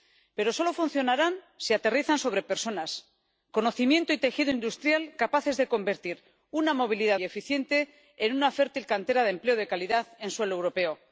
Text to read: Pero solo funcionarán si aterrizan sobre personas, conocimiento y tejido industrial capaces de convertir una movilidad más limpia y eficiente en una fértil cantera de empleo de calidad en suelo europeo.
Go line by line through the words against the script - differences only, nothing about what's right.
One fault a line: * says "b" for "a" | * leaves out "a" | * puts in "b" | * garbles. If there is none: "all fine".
* leaves out "más limpia"